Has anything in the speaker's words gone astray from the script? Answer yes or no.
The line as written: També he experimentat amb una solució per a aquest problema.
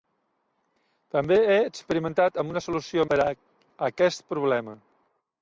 no